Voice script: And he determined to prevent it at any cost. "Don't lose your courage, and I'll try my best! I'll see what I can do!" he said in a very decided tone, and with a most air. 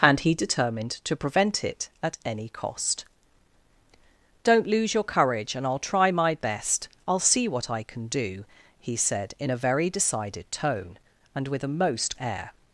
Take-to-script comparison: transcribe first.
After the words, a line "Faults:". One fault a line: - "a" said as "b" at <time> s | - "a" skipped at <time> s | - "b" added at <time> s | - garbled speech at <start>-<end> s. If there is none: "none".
And he determined to prevent it at any cost. "Don't lose your courage, and I'll try my best! I'll see what I can do!" he said in a very decided tone, and with a most air.
Faults:
none